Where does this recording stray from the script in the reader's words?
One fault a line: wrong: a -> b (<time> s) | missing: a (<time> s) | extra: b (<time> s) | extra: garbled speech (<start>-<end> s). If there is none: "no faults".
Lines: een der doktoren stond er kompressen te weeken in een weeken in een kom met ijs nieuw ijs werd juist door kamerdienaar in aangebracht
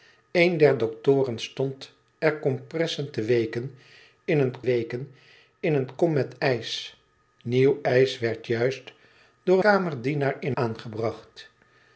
no faults